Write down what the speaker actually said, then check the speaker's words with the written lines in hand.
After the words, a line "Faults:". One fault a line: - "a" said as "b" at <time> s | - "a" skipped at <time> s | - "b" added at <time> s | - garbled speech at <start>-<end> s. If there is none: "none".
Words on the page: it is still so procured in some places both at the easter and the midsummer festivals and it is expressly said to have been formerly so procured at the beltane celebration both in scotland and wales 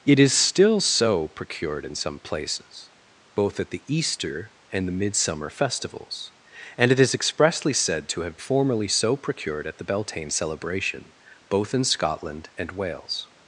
it is still so procured in some places both at the easter and the midsummer festivals and it is expressly said to have formerly so procured at the beltane celebration both in scotland and wales
Faults:
- "been" skipped at 8.4 s